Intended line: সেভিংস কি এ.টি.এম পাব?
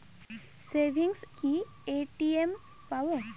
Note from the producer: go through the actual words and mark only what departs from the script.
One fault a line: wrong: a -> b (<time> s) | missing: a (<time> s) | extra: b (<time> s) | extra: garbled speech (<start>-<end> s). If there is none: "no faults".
no faults